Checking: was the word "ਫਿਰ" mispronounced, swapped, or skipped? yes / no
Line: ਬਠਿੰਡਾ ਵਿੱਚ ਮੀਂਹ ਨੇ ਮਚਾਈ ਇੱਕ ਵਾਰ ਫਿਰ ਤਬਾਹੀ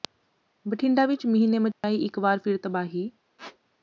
no